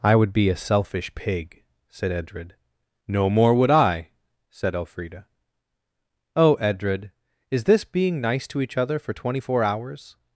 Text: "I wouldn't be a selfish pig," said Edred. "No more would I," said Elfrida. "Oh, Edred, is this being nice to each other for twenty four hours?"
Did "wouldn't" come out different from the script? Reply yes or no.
yes